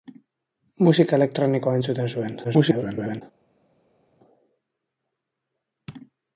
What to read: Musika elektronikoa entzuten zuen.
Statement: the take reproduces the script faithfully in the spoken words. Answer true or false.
false